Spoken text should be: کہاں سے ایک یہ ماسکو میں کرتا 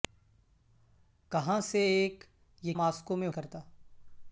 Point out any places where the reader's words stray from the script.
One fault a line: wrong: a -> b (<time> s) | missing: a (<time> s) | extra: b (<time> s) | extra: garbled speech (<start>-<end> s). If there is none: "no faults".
no faults